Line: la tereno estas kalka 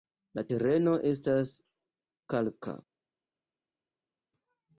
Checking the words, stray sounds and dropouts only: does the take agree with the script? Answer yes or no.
yes